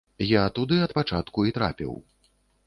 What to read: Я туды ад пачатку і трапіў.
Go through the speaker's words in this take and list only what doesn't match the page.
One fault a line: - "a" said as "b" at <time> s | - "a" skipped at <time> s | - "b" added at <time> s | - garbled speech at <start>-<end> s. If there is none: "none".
none